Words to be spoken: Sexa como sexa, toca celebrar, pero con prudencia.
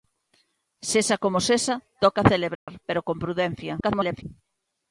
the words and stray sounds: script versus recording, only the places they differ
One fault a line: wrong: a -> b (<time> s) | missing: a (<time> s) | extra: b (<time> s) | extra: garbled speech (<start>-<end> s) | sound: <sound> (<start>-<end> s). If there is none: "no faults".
sound: dropout (2.6-2.7 s)
extra: garbled speech (3.8-4.2 s)